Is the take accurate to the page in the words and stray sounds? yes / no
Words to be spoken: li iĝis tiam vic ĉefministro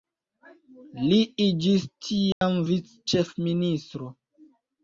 no